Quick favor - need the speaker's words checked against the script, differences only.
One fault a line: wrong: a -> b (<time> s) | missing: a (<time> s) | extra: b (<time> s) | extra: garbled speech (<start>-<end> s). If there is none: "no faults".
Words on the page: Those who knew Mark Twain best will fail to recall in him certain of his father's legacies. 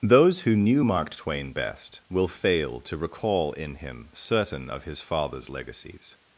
no faults